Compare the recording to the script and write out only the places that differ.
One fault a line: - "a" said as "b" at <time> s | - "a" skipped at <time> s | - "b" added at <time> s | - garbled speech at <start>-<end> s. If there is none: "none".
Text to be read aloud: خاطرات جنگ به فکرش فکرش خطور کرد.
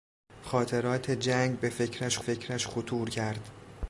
none